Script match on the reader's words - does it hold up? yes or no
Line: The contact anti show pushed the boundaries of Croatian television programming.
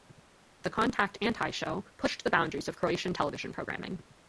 yes